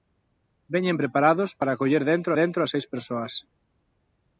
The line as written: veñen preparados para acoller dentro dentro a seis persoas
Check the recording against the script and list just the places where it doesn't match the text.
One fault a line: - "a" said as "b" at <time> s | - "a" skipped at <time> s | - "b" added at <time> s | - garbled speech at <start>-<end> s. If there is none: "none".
none